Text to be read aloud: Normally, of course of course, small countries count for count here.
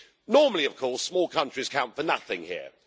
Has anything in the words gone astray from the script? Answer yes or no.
yes